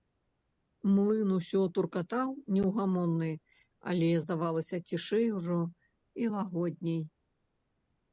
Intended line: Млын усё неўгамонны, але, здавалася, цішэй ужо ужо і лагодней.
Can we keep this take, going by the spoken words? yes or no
no